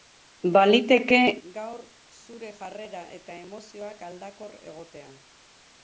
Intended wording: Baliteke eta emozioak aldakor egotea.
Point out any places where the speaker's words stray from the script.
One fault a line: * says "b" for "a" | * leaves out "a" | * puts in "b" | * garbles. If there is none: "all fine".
* puts in "gaur zure jarrera"